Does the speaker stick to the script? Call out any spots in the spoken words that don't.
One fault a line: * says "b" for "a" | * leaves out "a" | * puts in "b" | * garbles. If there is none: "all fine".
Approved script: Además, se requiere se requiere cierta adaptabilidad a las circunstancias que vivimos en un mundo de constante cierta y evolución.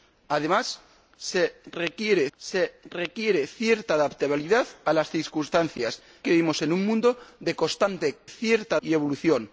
all fine